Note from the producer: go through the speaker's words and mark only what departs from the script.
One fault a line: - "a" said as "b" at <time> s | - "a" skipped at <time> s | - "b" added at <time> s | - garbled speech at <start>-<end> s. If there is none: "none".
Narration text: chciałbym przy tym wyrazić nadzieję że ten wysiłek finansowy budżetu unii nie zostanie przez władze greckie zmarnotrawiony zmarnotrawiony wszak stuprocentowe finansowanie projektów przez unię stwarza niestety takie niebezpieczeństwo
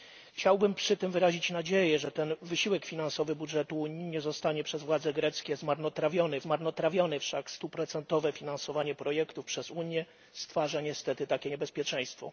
none